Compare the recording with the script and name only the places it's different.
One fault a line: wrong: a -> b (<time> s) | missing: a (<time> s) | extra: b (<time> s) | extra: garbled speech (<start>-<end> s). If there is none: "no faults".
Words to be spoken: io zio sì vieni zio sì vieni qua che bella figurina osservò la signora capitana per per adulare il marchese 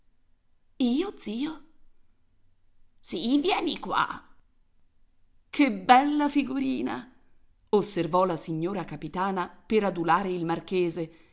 missing: zio sì vieni (3.8 s)
missing: per (9.8 s)